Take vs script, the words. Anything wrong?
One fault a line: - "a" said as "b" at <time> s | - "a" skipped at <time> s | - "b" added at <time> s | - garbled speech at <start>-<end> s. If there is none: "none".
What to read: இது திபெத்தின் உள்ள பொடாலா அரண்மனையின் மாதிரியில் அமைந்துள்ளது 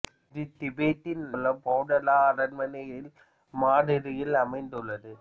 none